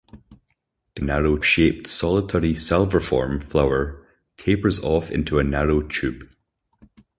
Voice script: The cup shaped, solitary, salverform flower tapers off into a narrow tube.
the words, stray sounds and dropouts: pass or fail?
fail